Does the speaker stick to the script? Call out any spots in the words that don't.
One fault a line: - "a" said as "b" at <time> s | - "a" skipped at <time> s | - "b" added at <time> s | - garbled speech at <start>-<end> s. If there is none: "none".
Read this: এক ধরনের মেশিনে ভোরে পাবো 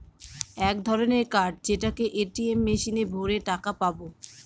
- "কার্ড যেটাকে এ.টি.এম" added at 1.3 s
- "টাকা" added at 3.5 s